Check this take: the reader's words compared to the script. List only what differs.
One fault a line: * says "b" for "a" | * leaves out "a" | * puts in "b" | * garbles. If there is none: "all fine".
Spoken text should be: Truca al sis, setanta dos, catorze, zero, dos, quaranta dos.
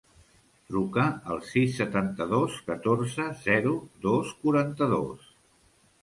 all fine